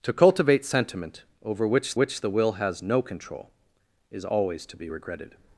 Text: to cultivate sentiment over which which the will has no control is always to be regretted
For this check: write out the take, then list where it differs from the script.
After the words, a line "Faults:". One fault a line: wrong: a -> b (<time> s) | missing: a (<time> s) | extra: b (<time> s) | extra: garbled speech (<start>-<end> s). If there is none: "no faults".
to cultivate sentiment over which which the will has no control is always to be regretted
Faults:
no faults